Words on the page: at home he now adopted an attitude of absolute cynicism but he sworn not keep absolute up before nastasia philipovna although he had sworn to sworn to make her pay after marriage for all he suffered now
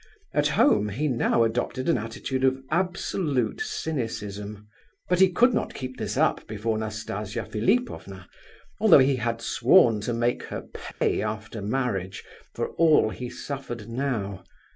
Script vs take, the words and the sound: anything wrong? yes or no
yes